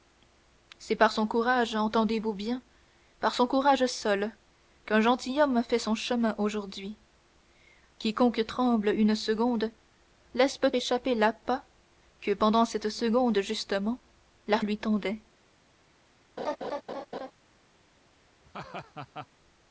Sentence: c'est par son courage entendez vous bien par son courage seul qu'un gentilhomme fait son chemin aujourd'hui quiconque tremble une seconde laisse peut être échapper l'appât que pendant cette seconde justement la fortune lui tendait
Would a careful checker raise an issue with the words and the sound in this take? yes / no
yes